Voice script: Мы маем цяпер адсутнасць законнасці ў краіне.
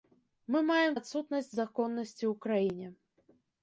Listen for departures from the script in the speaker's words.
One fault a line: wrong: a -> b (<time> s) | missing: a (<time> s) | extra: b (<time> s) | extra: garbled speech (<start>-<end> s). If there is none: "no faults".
missing: цяпер (0.9 s)